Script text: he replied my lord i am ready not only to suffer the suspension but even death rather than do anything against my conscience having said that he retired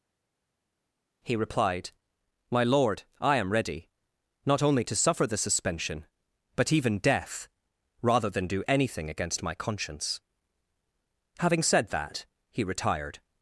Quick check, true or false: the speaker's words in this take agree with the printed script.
true